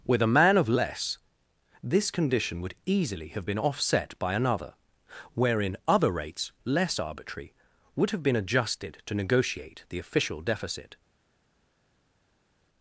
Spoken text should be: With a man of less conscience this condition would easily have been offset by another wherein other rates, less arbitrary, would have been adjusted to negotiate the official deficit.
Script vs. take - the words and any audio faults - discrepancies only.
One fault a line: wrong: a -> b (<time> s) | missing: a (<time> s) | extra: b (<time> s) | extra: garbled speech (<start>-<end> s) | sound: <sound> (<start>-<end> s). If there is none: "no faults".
missing: conscience (1.2 s)